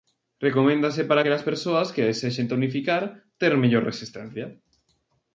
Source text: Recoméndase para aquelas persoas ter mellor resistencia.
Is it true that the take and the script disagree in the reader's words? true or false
true